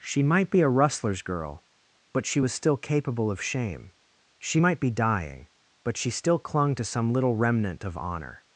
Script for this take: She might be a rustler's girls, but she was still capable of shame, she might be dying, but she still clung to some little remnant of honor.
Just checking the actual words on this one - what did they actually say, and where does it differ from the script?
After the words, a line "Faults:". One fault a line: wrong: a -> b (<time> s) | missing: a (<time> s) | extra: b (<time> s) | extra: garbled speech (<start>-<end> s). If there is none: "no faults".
She might be a rustler's girl, but she was still capable of shame, she might be dying, but she still clung to some little remnant of honor.
Faults:
wrong: girls -> girl (1.2 s)